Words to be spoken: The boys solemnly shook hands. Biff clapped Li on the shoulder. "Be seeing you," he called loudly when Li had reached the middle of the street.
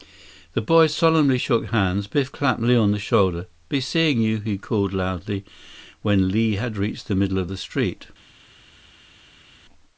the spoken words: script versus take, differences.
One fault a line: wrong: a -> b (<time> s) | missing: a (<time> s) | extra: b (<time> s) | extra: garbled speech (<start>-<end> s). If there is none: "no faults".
no faults